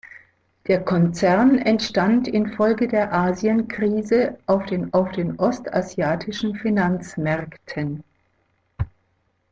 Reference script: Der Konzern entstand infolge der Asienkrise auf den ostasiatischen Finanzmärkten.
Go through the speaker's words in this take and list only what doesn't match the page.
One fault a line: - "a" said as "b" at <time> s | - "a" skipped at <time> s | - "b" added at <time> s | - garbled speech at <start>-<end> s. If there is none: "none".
- "auf den" added at 4.9 s